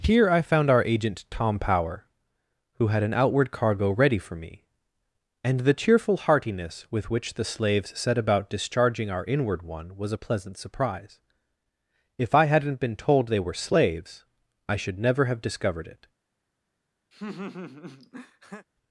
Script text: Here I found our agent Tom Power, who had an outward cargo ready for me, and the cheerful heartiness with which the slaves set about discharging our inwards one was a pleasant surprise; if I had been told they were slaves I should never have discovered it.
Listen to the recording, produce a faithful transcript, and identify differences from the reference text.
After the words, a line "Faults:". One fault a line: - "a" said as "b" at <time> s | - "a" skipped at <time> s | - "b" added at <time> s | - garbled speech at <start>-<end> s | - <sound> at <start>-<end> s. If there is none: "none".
Here I found our agent Tom Power, who had an outward cargo ready for me, and the cheerful heartiness with which the slaves set about discharging our inward one was a pleasant surprise; if I hadn't been told they were slaves I should never have discovered it.
Faults:
- "inwards" said as "inward" at 9.3 s
- "had" said as "hadn't" at 12.5 s
- laugh at 17.1-18.7 s